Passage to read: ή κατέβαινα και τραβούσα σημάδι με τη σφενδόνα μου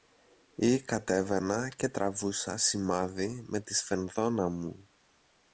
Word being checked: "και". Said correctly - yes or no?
yes